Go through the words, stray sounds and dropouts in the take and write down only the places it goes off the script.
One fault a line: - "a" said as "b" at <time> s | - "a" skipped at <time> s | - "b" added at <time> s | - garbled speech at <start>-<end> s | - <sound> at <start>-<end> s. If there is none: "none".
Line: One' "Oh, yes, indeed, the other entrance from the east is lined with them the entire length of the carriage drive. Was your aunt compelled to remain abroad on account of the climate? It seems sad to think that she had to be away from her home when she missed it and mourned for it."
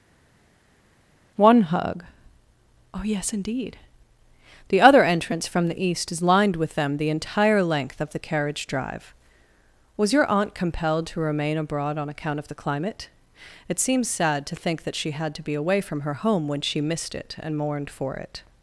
- "hug" added at 1.6 s